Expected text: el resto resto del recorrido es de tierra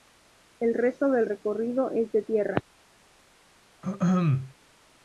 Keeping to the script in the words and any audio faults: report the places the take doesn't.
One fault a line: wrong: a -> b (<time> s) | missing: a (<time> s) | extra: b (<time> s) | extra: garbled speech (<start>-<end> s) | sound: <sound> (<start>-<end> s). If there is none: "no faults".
missing: resto (1.1 s)
sound: throat clearing (3.8-4.5 s)